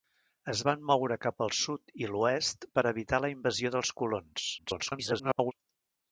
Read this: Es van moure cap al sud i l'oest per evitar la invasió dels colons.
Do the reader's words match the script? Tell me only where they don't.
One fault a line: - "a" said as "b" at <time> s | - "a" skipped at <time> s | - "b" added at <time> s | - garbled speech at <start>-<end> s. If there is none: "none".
- garbled speech at 4.6-5.5 s